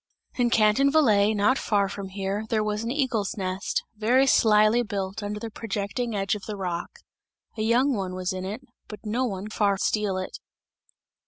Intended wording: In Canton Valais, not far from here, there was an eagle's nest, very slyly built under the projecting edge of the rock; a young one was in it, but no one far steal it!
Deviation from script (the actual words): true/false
false